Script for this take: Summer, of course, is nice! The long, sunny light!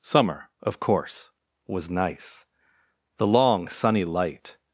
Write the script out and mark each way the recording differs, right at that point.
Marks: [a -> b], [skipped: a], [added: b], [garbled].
Summer, of course, [is -> was] nice! The long, sunny light!